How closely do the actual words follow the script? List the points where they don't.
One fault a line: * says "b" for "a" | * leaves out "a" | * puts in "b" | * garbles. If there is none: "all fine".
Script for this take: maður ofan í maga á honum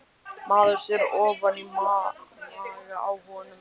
* puts in "sér"